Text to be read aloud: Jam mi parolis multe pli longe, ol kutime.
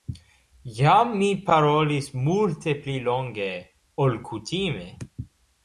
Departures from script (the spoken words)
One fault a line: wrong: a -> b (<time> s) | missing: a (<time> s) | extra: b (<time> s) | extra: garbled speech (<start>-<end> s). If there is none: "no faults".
no faults